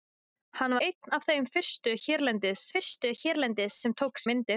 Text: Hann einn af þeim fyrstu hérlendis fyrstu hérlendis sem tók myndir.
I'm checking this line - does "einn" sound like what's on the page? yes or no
yes